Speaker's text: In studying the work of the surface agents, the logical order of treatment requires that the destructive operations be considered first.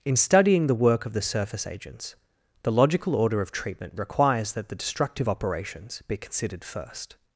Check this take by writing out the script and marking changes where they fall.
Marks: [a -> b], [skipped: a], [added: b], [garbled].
In studying the work of the surface agents, the logical order of treatment requires that the destructive operations be considered first.